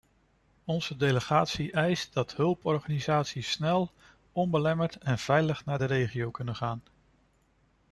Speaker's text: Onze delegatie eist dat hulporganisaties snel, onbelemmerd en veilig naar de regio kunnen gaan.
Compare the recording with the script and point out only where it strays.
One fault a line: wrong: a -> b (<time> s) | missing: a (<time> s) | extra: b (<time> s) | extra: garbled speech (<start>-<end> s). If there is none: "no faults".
no faults